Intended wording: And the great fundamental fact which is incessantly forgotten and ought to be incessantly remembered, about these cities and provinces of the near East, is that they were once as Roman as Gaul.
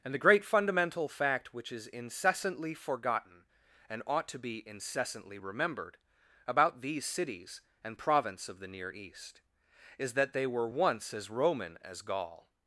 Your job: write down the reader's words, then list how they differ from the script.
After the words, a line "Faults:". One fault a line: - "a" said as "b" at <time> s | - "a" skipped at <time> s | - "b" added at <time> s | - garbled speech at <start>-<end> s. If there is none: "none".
And the great fundamental fact which is incessantly forgotten and ought to be incessantly remembered, about these cities and province of the near East, is that they were once as Roman as Gaul.
Faults:
- "provinces" said as "province" at 8.0 s